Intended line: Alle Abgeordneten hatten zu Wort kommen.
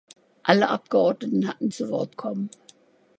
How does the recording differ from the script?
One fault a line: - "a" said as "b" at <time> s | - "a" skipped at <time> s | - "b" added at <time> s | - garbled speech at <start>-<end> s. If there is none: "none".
none